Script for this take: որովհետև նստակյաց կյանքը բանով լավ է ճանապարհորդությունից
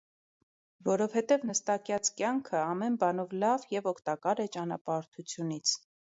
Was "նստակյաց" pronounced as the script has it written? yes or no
yes